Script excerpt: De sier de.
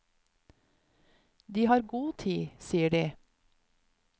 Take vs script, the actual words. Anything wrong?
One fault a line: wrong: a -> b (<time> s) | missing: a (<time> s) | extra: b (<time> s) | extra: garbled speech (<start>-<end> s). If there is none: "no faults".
extra: har god tid (1.6 s)